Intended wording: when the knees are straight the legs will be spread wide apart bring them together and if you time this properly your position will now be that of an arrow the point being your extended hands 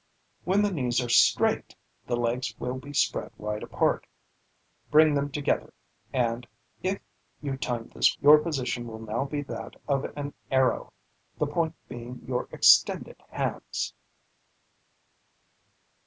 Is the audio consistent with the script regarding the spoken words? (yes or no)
no